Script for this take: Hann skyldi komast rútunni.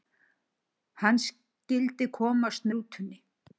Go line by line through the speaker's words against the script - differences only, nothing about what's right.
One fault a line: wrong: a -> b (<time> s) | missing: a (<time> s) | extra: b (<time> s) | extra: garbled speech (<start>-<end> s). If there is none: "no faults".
no faults